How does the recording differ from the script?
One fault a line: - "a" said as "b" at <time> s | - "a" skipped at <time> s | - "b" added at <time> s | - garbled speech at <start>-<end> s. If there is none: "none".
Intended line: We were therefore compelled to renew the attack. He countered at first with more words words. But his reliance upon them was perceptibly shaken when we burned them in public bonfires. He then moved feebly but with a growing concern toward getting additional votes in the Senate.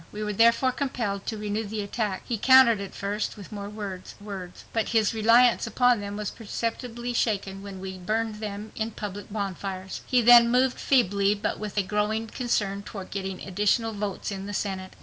none